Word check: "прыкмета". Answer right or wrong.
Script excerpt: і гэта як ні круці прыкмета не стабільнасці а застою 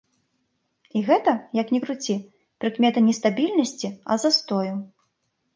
right